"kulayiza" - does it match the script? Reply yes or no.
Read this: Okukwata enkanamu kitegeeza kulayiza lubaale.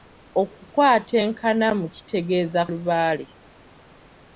no